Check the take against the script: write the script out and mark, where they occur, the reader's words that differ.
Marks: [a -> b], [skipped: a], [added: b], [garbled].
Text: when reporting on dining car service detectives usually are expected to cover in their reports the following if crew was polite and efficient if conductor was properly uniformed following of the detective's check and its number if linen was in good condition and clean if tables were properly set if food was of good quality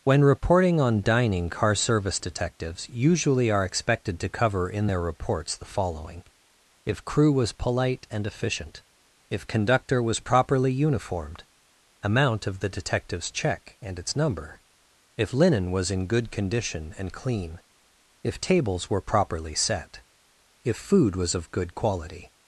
when reporting on dining car service detectives usually are expected to cover in their reports the following if crew was polite and efficient if conductor was properly uniformed [following -> amount] of the detective's check and its number if linen was in good condition and clean if tables were properly set if food was of good quality